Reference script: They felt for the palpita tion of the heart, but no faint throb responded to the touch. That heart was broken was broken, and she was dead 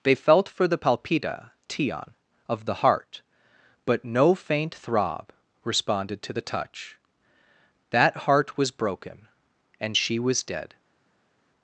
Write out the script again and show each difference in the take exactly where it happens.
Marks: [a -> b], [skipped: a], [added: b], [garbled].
They felt for the palpita tion of the heart, but no faint throb responded to the touch. That heart was broken [skipped: was broken,] and she was dead